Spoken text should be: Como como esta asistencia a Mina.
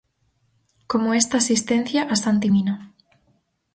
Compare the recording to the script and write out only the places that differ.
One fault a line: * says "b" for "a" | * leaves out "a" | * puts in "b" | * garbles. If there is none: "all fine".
* leaves out "como"
* puts in "Santi"